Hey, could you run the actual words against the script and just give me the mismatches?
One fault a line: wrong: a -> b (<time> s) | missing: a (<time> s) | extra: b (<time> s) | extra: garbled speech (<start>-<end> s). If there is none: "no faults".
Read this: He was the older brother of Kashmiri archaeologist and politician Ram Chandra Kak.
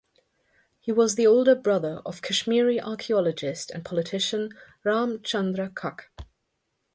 no faults